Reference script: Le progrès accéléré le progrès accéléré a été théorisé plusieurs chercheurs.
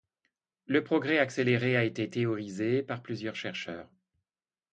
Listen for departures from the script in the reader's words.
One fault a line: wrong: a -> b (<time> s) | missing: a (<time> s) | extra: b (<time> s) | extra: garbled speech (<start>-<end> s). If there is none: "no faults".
missing: le progrès accéléré (1.8 s)
extra: par (2.8 s)